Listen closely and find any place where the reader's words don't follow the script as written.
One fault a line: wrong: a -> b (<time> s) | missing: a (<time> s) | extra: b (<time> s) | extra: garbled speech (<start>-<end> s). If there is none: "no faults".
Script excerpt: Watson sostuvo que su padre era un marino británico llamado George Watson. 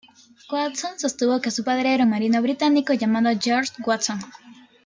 no faults